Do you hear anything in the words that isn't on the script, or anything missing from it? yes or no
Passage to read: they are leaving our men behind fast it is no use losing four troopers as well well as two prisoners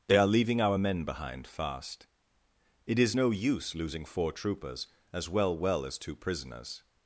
no